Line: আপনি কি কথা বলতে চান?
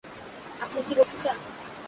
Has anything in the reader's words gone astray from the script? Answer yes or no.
yes